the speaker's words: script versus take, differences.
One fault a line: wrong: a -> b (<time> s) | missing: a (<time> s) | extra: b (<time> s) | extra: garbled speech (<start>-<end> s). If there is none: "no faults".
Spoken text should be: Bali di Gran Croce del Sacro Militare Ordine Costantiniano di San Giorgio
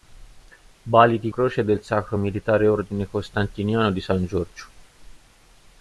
missing: Gran (1.3 s)